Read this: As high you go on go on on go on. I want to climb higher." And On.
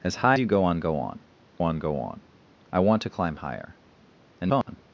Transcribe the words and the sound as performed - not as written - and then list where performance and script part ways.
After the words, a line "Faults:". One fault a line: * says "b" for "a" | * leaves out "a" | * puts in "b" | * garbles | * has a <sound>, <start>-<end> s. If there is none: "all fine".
As high you go on go on on go on. I want to climb higher." And On.
Faults:
* has a dropout, 4.6-4.7 s